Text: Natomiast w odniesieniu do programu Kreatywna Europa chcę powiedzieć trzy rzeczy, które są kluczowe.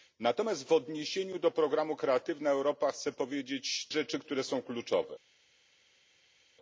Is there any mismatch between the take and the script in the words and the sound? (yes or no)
yes